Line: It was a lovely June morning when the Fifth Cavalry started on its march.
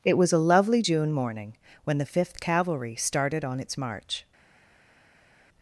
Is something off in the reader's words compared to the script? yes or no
no